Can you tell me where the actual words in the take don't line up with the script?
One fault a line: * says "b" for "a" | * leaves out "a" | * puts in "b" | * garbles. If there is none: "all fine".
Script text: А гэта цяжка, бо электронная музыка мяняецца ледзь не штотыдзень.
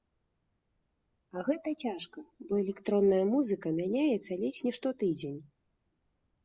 all fine